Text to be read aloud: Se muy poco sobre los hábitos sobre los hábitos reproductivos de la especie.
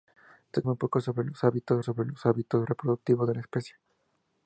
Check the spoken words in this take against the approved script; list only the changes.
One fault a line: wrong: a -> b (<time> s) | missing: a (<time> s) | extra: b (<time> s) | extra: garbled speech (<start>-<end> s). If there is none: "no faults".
no faults